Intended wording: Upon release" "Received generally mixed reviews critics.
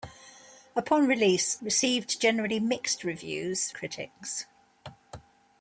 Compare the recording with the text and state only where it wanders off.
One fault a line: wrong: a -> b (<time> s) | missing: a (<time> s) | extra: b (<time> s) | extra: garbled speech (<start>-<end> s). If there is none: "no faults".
no faults